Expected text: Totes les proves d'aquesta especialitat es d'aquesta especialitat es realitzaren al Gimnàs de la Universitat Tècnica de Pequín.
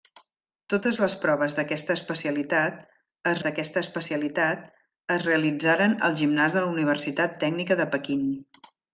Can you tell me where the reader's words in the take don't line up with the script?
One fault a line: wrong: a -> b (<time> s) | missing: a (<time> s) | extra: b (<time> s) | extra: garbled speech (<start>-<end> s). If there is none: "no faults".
no faults